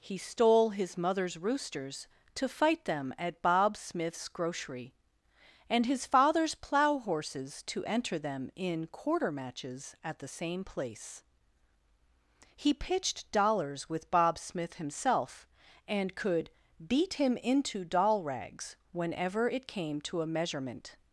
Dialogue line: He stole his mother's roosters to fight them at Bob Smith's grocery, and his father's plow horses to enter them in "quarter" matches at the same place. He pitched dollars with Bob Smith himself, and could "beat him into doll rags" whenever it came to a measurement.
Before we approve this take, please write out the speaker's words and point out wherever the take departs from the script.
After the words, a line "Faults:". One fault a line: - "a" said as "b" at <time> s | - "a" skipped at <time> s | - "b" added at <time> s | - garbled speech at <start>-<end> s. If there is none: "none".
He stole his mother's roosters to fight them at Bob Smith's grocery, and his father's plow horses to enter them in "quarter" matches at the same place. He pitched dollars with Bob Smith himself, and could "beat him into doll rags" whenever it came to a measurement.
Faults:
none